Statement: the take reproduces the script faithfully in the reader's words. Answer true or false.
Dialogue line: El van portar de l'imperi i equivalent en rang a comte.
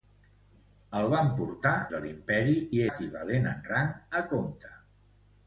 true